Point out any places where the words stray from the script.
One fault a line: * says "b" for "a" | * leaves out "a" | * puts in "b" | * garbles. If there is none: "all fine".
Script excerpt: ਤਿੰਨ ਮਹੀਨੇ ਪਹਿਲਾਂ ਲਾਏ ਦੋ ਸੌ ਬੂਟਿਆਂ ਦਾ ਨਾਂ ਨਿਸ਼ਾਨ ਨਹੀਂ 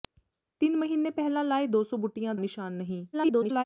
* leaves out "ਦਾ ਨਾਂ"
* garbles